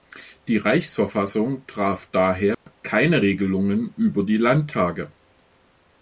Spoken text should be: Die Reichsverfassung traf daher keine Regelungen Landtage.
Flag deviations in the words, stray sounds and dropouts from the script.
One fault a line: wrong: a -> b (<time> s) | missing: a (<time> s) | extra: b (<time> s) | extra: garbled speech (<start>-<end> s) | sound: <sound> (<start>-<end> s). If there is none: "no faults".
sound: dropout (2.5-2.7 s)
extra: über die (3.9 s)